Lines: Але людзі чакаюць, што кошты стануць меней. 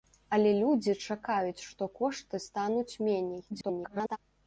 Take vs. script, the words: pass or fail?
fail